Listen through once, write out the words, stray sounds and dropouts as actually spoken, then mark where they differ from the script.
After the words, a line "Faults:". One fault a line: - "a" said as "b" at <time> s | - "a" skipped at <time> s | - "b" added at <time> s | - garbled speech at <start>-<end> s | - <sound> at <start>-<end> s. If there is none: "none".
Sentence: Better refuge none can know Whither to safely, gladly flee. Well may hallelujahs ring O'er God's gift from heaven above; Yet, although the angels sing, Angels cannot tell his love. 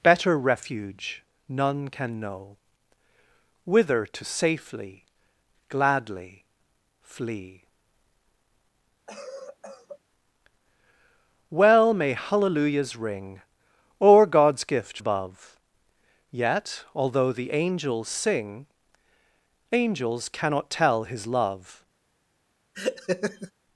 Better refuge none can know Whither to safely, gladly flee. Well may hallelujahs ring O'er God's gift above; Yet, although the angels sing, Angels cannot tell his love.
Faults:
- cough at 9.1-10.0 s
- "from heaven" skipped at 15.0 s
- laugh at 22.7-23.5 s